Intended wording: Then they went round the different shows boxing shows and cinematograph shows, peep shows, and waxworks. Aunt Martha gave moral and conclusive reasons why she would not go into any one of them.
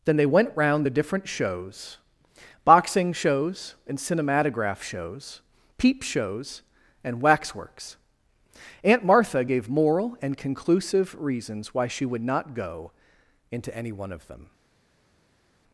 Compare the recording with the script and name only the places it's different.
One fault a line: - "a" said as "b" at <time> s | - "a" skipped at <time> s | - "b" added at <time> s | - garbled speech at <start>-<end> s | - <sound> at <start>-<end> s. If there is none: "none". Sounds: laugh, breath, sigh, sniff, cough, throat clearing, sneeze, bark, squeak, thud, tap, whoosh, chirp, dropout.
none